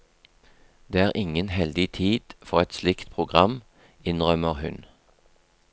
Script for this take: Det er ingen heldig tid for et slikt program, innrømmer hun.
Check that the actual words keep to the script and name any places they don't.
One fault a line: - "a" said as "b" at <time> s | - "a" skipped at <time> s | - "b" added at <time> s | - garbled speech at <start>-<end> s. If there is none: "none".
none